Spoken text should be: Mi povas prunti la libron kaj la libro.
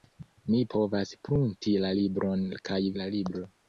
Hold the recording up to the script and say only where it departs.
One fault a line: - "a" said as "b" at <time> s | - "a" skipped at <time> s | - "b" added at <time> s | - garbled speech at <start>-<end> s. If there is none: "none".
none